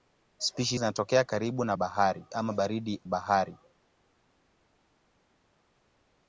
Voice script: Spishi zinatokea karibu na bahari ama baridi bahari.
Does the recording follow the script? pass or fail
pass